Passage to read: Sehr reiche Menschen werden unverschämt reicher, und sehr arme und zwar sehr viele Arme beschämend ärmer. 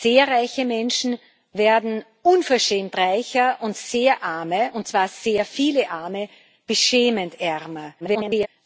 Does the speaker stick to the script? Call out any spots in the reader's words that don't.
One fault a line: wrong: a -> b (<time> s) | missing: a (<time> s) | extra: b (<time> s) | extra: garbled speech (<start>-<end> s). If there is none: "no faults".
extra: garbled speech (8.0-8.5 s)